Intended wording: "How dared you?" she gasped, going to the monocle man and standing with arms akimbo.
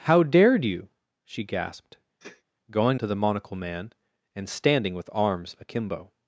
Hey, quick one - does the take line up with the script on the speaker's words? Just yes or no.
yes